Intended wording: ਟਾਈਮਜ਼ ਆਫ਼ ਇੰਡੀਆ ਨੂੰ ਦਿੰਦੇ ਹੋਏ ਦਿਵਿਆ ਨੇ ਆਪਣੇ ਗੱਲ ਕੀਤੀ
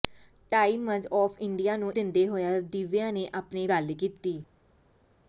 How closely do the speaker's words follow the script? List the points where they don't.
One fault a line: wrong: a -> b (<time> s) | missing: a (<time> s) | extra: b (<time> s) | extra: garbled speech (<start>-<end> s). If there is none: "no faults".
no faults